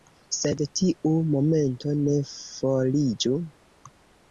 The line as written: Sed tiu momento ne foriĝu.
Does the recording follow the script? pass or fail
pass